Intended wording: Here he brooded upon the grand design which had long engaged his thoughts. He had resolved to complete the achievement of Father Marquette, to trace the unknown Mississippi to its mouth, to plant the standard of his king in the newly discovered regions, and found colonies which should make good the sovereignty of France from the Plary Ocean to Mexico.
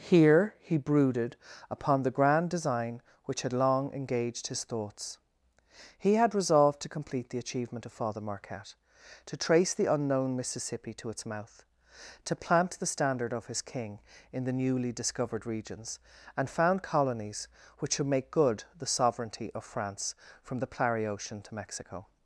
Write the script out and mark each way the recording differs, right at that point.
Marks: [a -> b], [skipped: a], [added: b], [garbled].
Here he brooded upon the grand design which had long engaged his thoughts. He had resolved to complete the achievement of Father Marquette, to trace the unknown Mississippi to its mouth, to plant the standard of his king in the newly discovered regions, and found colonies which should make good the sovereignty of France from the Plary Ocean to Mexico.